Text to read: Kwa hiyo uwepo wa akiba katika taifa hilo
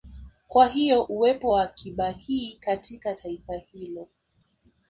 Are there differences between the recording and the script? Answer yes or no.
yes